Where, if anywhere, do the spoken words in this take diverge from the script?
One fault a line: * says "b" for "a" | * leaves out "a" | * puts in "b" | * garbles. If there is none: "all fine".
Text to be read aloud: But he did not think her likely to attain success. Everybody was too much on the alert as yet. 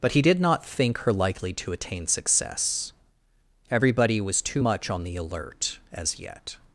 all fine